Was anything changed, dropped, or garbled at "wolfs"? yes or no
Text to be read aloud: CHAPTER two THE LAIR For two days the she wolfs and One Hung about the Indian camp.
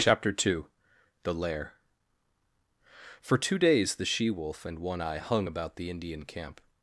yes